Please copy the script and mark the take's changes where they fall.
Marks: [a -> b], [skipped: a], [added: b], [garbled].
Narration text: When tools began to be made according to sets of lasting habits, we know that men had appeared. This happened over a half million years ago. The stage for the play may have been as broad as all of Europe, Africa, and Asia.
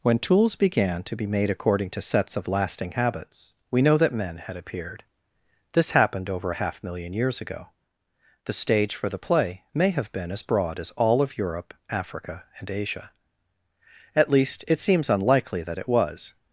When tools began to be made according to sets of lasting habits, we know that men had appeared. This happened over a half million years ago. The stage for the play may have been as broad as all of Europe, Africa, and Asia. [added: At least it seems unlikely that it was]